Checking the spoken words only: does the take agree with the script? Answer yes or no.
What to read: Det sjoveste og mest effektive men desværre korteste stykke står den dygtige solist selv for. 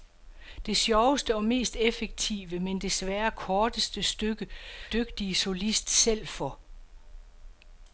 no